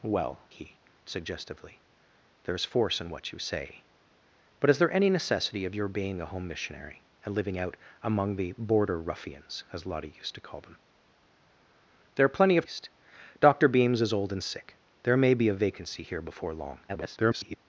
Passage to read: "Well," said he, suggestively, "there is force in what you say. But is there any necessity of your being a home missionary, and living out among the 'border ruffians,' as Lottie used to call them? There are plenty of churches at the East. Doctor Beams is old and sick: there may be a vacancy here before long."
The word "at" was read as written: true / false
false